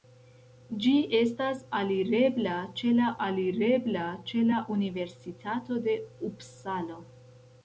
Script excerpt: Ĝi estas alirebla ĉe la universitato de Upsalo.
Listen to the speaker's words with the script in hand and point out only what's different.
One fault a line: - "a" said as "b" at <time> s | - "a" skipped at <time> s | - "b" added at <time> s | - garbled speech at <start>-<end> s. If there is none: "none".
- "alirebla ĉe la" added at 3.3 s